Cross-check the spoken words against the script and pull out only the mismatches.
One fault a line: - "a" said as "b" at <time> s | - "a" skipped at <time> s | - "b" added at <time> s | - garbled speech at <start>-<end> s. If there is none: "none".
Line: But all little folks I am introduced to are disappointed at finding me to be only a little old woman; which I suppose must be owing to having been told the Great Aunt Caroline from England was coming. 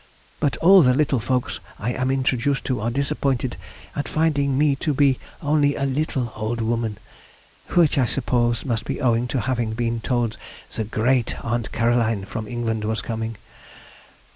- "the" added at 0.8 s